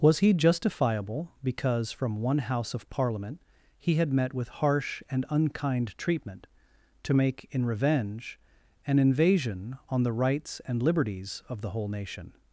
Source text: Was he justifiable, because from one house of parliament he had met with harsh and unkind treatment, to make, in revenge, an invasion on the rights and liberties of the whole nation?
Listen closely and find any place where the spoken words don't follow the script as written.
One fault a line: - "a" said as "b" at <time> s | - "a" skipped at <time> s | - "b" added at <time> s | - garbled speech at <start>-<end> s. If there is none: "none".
none